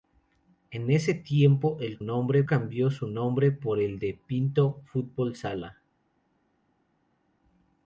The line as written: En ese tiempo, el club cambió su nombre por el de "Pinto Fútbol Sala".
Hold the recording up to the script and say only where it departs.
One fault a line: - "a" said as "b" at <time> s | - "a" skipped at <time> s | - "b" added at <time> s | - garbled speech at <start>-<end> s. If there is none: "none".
- "club" said as "nombre" at 2.0 s